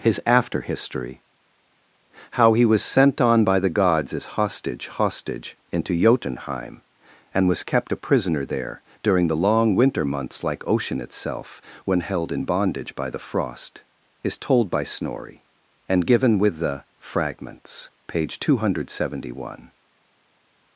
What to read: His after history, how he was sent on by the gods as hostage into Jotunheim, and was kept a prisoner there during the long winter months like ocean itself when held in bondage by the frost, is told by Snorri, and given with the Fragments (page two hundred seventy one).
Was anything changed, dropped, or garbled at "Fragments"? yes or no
no